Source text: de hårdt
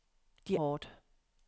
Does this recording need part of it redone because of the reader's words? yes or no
no